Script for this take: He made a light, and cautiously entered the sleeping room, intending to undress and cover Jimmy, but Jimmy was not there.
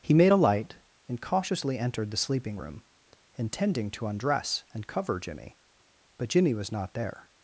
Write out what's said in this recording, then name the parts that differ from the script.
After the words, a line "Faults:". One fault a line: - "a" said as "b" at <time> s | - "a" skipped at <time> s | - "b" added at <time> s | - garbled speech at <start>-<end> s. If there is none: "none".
He made a light, and cautiously entered the sleeping room, intending to undress and cover Jimmy, but Jimmy was not there.
Faults:
none